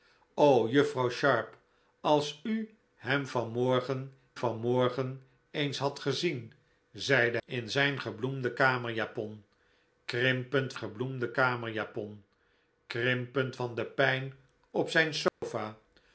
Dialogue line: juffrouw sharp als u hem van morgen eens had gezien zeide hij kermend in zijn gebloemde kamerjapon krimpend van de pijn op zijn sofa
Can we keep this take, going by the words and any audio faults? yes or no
no